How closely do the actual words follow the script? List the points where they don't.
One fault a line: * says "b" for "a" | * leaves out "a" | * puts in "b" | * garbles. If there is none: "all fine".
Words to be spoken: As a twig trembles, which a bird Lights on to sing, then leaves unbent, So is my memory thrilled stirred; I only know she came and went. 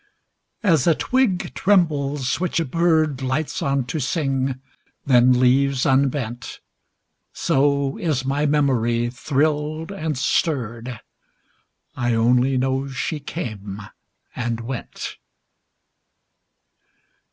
* puts in "and"